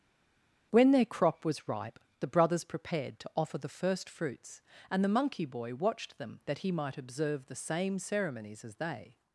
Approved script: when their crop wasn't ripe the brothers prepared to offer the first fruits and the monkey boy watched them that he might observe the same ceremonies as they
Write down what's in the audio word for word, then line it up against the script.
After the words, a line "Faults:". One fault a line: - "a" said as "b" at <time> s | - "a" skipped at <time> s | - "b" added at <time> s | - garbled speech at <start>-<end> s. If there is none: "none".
when their crop was ripe the brothers prepared to offer the first fruits and the monkey boy watched them that he might observe the same ceremonies as they
Faults:
- "wasn't" said as "was" at 1.4 s